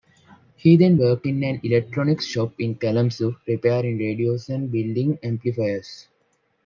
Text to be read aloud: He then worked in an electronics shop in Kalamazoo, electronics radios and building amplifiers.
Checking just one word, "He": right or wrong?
right